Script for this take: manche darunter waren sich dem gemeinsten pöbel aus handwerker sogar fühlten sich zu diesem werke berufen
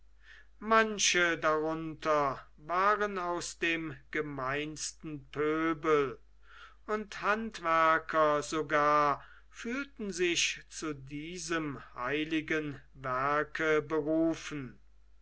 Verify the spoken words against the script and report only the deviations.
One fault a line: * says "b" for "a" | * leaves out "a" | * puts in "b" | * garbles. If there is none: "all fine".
* says "aus" for "sich"
* says "und" for "aus"
* puts in "heiligen"